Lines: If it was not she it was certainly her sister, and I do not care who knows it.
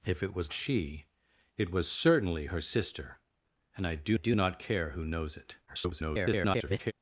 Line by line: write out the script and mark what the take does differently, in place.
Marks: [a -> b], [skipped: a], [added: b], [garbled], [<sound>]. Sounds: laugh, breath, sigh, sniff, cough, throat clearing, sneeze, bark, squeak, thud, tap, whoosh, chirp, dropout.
If it was [skipped: not] she it was certainly her sister, and I do [added: do] not care who knows it. [garbled]